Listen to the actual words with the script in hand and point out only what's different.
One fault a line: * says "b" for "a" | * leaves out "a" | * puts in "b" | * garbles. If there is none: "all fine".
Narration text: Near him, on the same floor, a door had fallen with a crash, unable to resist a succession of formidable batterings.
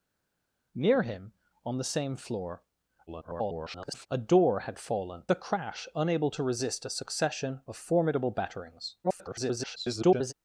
* garbles
* leaves out "with"
* garbles